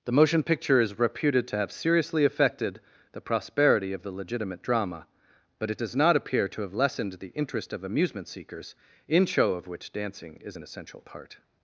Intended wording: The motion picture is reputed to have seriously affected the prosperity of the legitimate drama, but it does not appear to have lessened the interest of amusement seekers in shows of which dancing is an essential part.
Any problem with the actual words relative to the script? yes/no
yes